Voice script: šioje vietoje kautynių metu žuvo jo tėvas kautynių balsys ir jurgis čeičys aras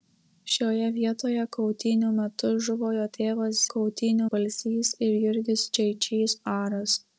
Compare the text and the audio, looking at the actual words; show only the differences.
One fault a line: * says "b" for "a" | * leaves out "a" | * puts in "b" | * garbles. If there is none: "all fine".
all fine